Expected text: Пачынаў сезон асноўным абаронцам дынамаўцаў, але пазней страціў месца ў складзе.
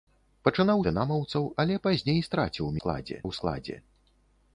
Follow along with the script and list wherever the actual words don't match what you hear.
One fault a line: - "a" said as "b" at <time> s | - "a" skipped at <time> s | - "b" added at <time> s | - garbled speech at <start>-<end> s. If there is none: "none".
- "сезон асноўным абаронцам" skipped at 0.8 s
- "месца" said as "складзе" at 2.8 s